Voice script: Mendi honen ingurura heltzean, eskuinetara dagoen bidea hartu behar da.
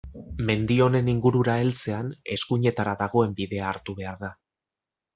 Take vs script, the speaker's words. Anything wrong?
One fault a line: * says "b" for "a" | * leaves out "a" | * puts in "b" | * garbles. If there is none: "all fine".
all fine